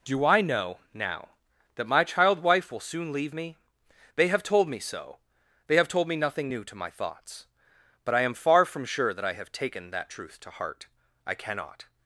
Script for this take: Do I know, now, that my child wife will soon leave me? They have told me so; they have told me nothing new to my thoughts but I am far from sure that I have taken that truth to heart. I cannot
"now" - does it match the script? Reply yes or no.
yes